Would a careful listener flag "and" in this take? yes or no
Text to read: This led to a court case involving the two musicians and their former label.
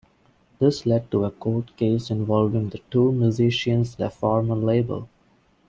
yes